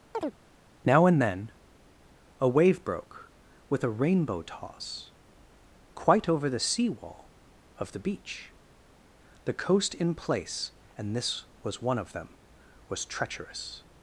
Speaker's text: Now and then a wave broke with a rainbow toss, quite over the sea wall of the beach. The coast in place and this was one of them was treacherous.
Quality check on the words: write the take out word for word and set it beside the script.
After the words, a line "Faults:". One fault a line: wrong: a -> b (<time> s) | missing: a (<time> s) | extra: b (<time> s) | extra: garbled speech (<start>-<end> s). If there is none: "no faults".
Now and then a wave broke with a rainbow toss, quite over the sea wall of the beach. The coast in place and this was one of them was treacherous.
Faults:
no faults